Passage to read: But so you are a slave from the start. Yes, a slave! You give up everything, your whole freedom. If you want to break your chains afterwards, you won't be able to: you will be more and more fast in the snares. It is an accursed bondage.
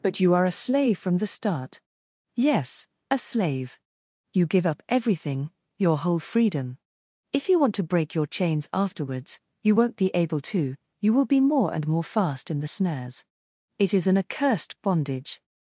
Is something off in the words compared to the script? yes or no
yes